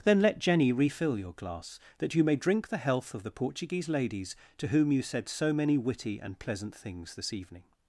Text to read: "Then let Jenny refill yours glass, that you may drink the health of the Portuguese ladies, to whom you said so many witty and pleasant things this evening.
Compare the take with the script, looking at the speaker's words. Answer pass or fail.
fail